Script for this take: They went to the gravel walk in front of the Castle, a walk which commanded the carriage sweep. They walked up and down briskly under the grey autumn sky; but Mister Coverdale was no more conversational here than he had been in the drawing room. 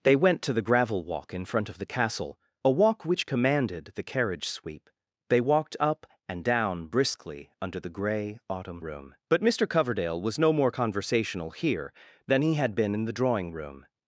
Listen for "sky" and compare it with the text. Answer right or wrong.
wrong